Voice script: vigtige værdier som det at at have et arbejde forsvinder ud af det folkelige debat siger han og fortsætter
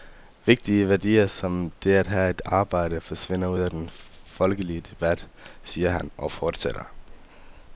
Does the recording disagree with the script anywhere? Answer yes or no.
yes